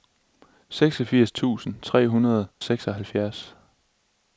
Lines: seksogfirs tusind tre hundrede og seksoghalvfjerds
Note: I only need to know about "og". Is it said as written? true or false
false